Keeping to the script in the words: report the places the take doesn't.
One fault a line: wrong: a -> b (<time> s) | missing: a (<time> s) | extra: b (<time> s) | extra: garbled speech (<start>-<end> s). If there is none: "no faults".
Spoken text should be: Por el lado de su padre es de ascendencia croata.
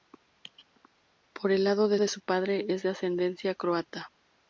extra: de (2.0 s)